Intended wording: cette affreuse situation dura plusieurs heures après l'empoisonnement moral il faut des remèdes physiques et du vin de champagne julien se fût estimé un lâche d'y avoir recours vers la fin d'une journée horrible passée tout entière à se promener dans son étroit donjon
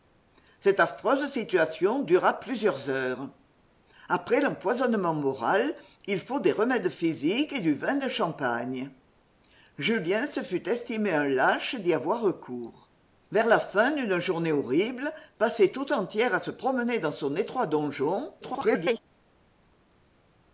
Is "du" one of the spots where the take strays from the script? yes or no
no